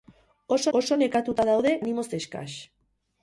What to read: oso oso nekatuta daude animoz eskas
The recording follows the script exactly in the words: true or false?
true